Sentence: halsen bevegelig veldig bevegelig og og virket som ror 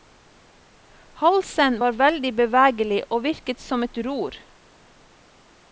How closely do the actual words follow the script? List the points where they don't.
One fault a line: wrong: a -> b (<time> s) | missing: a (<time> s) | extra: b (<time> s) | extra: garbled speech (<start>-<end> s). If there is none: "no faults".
wrong: bevegelig -> var (1.8 s)
missing: og (3.2 s)
extra: et (3.9 s)